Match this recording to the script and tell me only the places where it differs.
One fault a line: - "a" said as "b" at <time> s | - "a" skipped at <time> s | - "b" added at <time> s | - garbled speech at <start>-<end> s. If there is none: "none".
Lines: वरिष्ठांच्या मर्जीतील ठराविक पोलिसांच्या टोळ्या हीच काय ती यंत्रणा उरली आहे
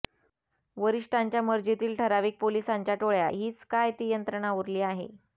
none